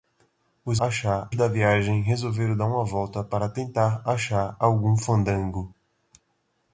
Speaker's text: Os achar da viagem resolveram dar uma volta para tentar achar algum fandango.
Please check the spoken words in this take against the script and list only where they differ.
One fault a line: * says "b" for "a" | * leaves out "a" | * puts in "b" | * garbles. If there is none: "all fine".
all fine